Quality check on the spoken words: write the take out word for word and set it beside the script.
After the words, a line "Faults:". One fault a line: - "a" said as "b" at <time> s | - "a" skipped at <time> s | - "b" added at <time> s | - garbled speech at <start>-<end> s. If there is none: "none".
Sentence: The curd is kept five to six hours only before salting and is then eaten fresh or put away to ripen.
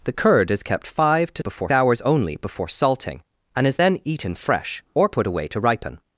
The curd is kept five to before hours only before salting and is then eaten fresh or put away to ripen.
Faults:
- "six" said as "before" at 1.4 s